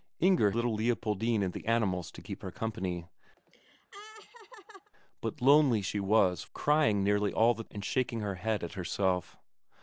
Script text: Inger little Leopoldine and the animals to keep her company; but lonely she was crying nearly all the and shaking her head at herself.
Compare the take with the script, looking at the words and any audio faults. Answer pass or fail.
fail